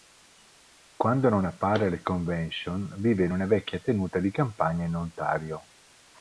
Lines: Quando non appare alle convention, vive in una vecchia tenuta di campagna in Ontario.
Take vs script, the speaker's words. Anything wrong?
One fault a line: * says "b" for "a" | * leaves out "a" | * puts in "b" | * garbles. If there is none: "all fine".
all fine